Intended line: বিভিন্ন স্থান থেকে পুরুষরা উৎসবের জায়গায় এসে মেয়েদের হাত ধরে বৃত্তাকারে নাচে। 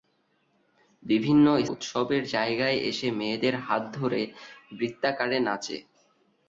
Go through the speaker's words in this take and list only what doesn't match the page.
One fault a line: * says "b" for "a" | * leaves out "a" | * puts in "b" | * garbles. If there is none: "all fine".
* leaves out "স্থান থেকে পুরুষরা"